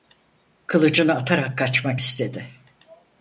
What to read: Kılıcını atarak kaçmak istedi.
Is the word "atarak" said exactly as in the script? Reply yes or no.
yes